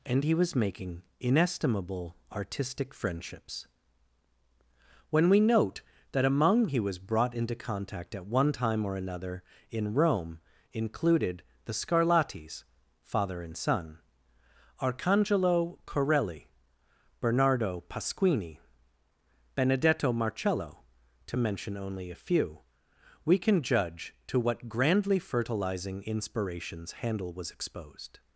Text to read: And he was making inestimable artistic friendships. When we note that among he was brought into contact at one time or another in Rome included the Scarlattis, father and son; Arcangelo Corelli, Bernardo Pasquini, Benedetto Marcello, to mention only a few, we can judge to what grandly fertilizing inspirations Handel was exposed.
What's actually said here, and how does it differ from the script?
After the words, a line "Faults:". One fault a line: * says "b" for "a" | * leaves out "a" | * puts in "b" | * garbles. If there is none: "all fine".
And he was making inestimable artistic friendships. When we note that among he was brought into contact at one time or another in Rome included the Scarlattis, father and son; Arcangelo Corelli, Bernardo Pasquini, Benedetto Marcello, to mention only a few, we can judge to what grandly fertilizing inspirations Handel was exposed.
Faults:
all fine